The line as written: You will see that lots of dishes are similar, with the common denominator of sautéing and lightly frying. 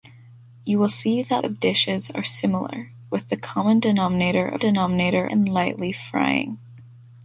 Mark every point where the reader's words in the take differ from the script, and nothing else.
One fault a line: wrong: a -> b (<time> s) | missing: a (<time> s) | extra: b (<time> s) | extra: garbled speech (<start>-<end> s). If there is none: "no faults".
missing: lots (1.4 s)
wrong: sautéing -> denominator (4.6 s)